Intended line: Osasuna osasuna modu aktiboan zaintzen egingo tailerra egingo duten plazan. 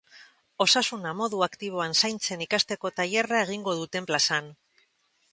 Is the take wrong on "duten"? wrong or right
right